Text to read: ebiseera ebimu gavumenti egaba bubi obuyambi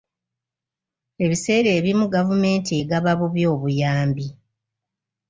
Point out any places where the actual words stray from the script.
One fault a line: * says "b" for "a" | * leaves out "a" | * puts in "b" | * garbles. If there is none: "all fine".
all fine